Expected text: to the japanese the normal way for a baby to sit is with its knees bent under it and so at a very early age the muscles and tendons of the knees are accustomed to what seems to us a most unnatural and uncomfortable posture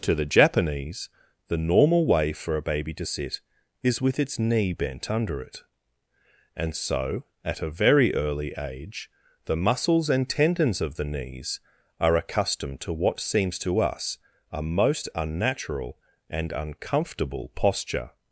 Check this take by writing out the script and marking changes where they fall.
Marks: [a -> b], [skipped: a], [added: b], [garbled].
to the japanese the normal way for a baby to sit is with its [knees -> knee] bent under it and so at a very early age the muscles and tendons of the knees are accustomed to what seems to us a most unnatural and uncomfortable posture